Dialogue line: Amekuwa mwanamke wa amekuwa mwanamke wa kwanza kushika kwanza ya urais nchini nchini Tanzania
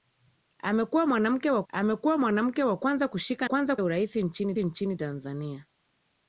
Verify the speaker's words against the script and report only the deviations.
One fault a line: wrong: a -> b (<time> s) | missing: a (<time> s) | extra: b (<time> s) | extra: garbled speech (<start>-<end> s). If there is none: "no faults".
no faults